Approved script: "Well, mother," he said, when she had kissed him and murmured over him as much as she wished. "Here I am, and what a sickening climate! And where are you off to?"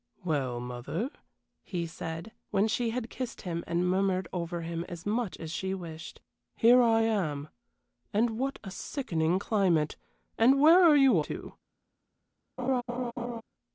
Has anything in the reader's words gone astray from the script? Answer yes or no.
yes